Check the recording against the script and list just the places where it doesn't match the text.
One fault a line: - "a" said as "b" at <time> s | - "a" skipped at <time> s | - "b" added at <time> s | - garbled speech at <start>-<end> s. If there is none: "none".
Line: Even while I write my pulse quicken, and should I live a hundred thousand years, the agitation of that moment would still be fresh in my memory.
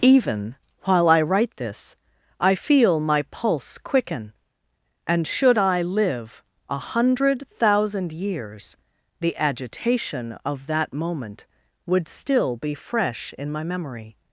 - "this I feel" added at 1.6 s